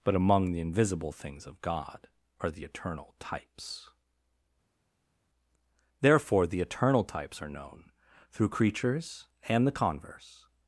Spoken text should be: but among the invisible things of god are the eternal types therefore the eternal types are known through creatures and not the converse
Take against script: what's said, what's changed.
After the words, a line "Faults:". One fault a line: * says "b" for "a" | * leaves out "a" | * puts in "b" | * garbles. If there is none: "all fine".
but among the invisible things of god are the eternal types therefore the eternal types are known through creatures and the converse
Faults:
* leaves out "not"